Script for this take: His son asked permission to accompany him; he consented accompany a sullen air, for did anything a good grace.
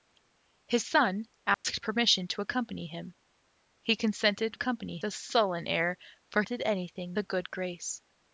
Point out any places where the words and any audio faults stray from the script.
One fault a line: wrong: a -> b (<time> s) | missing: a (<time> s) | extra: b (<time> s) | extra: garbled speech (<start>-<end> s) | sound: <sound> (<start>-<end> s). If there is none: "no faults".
sound: dropout (1.5-1.6 s)